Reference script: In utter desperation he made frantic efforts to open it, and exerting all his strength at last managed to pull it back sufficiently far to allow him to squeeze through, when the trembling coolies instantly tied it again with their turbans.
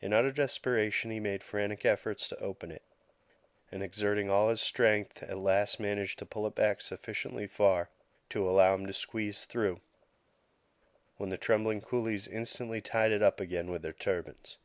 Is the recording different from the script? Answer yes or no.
yes